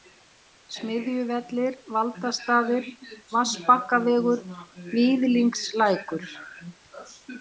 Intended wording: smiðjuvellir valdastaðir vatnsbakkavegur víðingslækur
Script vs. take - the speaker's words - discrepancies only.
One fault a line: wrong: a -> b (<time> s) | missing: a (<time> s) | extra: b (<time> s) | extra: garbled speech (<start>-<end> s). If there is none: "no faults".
no faults